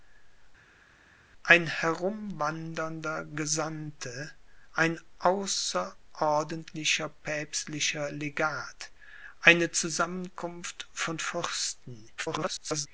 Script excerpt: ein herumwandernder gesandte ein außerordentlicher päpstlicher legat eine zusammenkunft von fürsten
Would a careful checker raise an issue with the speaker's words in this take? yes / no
yes